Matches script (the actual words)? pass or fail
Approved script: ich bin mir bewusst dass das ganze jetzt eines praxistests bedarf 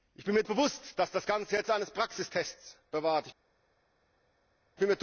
pass